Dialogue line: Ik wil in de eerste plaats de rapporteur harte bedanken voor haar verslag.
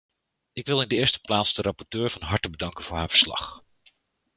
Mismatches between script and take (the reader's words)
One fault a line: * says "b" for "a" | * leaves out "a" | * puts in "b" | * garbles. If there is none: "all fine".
* puts in "van"